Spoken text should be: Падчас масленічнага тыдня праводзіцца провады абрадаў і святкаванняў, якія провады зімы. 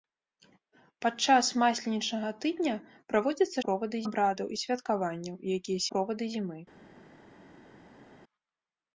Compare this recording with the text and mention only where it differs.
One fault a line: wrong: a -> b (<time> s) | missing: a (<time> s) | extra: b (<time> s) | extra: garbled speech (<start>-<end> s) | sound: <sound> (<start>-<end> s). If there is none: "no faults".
no faults